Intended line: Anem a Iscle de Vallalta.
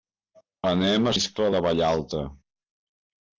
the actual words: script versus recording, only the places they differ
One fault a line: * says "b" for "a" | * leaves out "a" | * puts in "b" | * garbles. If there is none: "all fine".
all fine